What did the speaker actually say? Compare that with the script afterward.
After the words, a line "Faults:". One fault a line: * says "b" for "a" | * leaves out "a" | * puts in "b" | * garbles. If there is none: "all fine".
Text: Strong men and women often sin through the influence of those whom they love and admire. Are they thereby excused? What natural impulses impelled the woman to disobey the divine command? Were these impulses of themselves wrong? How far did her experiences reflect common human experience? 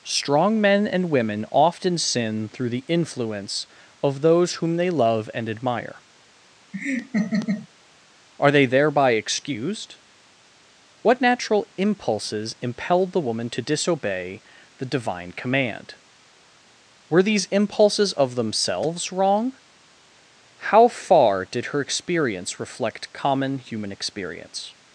Strong men and women often sin through the influence of those whom they love and admire. Are they thereby excused? What natural impulses impelled the woman to disobey the divine command? Were these impulses of themselves wrong? How far did her experience reflect common human experience?
Faults:
* says "experience" for "experiences"